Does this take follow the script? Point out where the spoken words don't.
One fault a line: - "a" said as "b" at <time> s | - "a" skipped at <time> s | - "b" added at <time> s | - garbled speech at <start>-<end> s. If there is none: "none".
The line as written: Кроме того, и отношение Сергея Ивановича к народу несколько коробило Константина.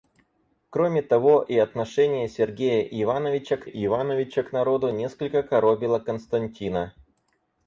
- "Ивановича к" added at 3.6 s